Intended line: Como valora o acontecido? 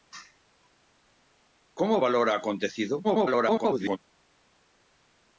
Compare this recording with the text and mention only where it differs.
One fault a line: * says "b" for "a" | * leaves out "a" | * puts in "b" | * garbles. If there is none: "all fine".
* garbles